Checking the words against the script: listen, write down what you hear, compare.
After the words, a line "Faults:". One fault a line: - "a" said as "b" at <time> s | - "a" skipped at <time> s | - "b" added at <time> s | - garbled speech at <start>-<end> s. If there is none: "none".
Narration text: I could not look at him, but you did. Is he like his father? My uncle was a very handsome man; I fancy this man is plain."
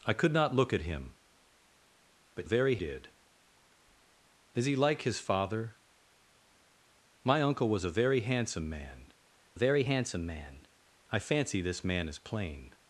I could not look at him, but very did. Is he like his father? My uncle was a very handsome man very handsome man; I fancy this man is plain."
Faults:
- "you" said as "very" at 2.4 s
- "very handsome man" added at 9.5 s